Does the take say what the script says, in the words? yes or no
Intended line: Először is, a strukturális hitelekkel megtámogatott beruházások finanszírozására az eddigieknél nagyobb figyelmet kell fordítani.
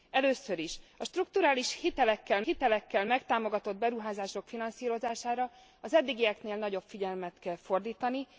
no